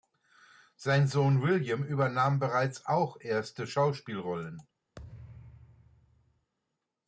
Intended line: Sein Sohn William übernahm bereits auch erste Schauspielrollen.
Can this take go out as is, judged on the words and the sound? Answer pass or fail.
fail